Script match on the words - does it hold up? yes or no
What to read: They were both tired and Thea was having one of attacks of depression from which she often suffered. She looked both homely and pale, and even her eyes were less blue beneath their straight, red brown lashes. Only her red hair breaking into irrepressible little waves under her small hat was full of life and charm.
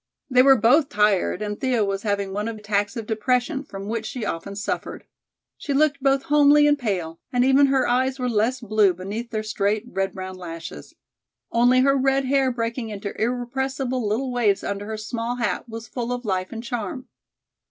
yes